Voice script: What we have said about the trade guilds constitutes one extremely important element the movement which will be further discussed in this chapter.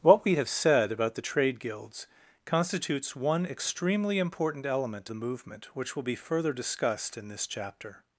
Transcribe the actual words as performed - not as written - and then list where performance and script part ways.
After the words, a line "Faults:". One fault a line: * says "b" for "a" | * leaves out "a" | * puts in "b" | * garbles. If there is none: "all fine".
What we have said about the trade guilds constitutes one extremely important element the movement which will be further discussed in this chapter.
Faults:
all fine